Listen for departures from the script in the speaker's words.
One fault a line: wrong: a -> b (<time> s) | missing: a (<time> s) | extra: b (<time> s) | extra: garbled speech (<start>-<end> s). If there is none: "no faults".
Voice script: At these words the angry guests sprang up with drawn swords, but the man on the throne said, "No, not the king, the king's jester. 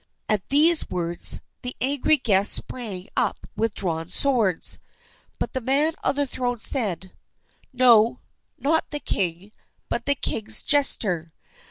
extra: but (9.9 s)